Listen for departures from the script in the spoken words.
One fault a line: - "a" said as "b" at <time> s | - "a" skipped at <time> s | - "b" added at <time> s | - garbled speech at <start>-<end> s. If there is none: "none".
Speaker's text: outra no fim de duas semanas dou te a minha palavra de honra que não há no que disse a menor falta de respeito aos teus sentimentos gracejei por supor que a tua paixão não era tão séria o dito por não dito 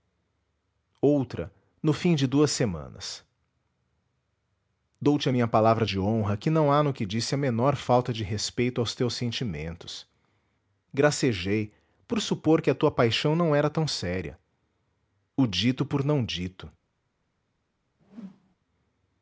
none